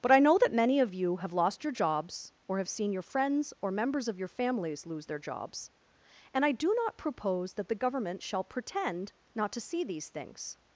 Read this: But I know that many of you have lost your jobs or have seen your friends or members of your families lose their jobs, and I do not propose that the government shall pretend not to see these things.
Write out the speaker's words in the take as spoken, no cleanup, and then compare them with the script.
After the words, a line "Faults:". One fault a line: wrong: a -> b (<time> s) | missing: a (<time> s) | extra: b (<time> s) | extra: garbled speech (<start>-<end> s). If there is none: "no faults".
But I know that many of you have lost your jobs or have seen your friends or members of your families lose their jobs, and I do not propose that the government shall pretend not to see these things.
Faults:
no faults